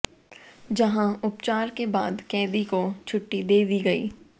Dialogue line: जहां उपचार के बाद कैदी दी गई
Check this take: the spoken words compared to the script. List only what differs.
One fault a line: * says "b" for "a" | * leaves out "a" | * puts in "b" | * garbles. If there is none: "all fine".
* puts in "को छुट्टी दे"